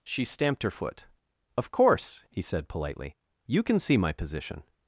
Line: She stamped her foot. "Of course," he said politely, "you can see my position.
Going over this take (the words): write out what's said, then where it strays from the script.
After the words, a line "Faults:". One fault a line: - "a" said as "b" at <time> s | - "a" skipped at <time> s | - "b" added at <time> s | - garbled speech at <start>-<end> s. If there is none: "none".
She stamped her foot. "Of course," he said politely, "you can see my position.
Faults:
none